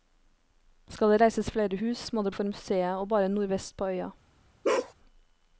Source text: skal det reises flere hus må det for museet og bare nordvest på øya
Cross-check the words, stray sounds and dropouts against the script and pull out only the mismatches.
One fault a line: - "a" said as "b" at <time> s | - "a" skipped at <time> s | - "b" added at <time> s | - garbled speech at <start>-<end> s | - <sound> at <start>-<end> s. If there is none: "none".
- bark at 4.6-4.9 s